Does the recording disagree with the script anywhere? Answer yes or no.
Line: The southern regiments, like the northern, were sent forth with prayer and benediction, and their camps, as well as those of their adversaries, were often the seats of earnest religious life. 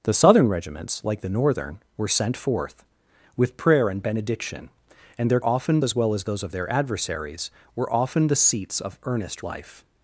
yes